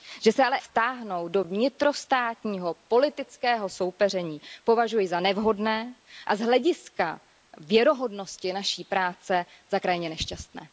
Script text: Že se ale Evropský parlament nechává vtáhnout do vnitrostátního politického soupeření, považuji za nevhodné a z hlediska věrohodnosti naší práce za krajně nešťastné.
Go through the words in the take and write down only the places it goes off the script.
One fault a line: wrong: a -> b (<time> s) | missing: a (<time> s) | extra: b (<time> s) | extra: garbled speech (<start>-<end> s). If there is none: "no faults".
missing: Evropský parlament nechává (0.6 s)